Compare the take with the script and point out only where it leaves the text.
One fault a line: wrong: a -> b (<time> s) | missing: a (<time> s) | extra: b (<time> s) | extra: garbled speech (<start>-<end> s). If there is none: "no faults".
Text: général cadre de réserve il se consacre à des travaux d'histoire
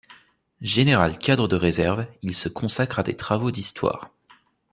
no faults